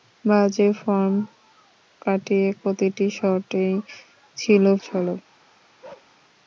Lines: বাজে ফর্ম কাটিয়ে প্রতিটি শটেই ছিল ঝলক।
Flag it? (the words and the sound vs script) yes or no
yes